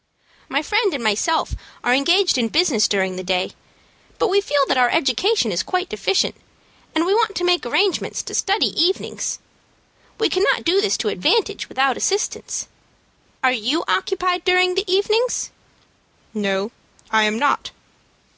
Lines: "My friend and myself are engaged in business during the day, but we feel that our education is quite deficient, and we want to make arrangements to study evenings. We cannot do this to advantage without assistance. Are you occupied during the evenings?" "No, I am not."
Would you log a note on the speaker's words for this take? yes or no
no